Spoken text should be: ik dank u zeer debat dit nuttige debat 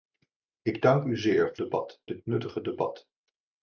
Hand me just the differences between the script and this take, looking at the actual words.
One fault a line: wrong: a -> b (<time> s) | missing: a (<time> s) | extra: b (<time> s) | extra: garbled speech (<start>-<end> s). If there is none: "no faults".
no faults